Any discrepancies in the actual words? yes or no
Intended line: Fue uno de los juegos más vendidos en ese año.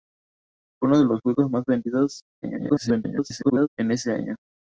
yes